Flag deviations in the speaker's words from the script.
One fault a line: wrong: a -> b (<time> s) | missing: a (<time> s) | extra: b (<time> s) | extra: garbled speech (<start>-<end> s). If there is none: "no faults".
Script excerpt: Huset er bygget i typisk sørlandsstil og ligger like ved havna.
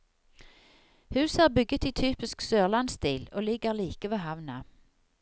no faults